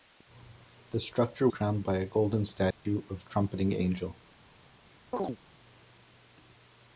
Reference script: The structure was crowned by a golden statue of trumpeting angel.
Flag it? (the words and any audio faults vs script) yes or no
yes